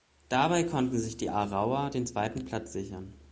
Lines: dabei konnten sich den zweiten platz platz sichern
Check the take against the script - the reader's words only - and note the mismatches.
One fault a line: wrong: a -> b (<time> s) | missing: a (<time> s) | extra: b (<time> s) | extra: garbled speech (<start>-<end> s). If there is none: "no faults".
extra: die aarauer (1.2 s)
missing: platz (2.7 s)